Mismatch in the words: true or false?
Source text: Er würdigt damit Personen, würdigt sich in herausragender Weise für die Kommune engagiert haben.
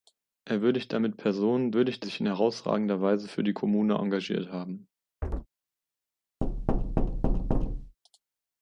false